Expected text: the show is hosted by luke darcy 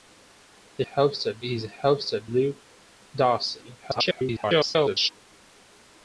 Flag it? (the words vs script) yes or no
yes